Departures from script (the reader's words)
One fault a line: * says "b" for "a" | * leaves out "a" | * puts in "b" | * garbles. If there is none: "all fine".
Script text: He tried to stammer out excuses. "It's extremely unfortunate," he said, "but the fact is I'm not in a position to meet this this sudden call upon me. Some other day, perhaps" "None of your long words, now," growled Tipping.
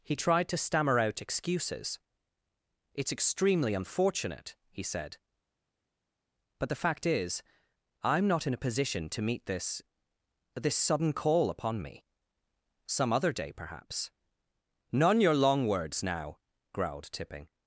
* leaves out "of"